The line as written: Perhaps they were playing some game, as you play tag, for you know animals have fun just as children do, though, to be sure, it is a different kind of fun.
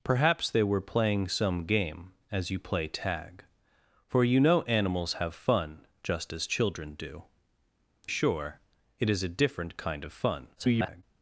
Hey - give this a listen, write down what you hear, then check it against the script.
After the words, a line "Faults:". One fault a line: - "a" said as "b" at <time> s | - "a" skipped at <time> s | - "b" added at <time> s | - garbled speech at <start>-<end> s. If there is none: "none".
Perhaps they were playing some game, as you play tag, for you know animals have fun just as children do, sure, it is a different kind of fun. [garbled]
Faults:
- "though to be" skipped at 7.2 s
- garbled speech at 10.6-11.0 s